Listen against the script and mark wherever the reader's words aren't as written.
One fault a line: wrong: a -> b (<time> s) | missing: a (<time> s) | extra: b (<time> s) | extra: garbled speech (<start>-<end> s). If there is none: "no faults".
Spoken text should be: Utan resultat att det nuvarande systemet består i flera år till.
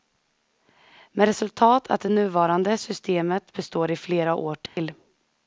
wrong: Utan -> Med (1.1 s)